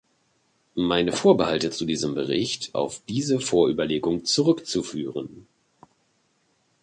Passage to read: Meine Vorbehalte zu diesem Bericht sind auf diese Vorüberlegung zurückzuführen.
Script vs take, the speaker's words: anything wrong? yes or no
yes